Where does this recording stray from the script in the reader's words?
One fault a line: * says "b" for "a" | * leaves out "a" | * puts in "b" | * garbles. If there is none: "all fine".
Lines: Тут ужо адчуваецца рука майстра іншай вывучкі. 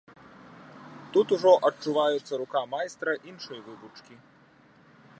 all fine